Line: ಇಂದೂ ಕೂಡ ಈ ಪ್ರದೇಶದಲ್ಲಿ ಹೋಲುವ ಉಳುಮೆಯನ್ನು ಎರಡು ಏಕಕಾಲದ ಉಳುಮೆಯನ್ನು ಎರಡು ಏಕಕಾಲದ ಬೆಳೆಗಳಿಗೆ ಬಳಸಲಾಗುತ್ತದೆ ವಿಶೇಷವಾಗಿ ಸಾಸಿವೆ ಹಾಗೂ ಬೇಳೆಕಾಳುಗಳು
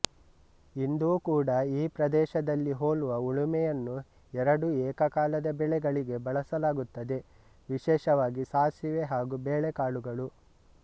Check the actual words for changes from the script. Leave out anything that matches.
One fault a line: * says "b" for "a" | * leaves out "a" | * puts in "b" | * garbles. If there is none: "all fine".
* leaves out "ಉಳುಮೆಯನ್ನು ಎರಡು ಏಕಕಾಲದ"